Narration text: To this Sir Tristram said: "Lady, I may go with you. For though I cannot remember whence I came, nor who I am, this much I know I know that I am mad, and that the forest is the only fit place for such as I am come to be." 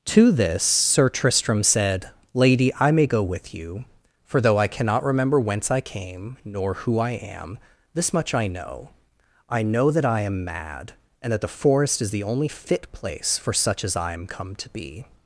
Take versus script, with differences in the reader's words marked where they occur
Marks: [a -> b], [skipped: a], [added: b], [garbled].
To this Sir Tristram said: "Lady, I may go with you. For though I cannot remember whence I came, nor who I am, this much I know I know that I am mad, and that the forest is the only fit place for such as I am come to be."